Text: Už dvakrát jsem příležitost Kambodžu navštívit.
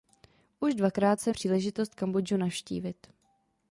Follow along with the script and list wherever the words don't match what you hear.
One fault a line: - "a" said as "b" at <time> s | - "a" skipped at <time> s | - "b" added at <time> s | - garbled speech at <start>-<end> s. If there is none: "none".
none